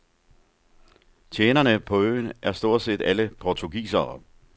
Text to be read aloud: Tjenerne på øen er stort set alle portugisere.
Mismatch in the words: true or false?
false